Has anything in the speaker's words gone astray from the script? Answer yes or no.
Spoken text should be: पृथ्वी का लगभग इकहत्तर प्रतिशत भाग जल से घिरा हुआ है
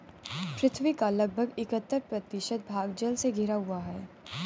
no